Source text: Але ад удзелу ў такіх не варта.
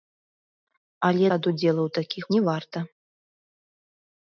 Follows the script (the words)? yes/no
yes